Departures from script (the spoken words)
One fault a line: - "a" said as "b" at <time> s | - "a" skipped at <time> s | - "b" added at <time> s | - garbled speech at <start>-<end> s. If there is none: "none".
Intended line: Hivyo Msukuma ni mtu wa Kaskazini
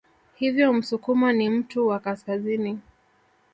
none